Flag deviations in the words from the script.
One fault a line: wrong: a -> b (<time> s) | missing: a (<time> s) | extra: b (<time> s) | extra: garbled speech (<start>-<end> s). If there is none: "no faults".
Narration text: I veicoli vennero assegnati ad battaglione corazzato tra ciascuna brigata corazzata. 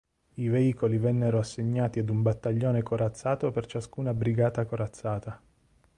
extra: un (2.1 s)
wrong: tra -> per (3.5 s)